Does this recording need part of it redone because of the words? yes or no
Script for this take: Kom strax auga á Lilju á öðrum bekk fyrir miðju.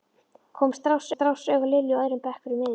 yes